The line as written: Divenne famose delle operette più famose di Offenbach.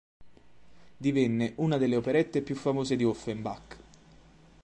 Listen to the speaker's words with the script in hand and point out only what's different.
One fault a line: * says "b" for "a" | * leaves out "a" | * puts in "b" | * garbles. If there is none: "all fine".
* says "una" for "famose"